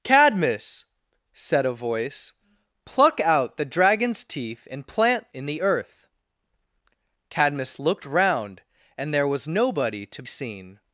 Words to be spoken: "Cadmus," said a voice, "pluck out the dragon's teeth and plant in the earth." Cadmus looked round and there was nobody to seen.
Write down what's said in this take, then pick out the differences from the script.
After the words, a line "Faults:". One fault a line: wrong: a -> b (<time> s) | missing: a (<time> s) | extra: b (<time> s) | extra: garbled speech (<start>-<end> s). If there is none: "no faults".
"Cadmus," said a voice, "pluck out the dragon's teeth and plant in the earth." Cadmus looked round and there was nobody to seen.
Faults:
no faults